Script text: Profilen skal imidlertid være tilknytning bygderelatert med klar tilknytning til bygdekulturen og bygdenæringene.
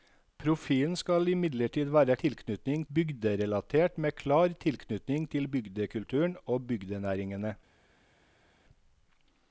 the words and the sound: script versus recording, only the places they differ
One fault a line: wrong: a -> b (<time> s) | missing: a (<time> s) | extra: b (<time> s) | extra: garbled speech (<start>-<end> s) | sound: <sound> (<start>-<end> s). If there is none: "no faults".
no faults